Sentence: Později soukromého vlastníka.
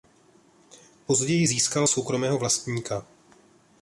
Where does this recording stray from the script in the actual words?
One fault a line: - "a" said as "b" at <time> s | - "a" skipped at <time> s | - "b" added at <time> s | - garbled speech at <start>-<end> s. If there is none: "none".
- "získal" added at 1.4 s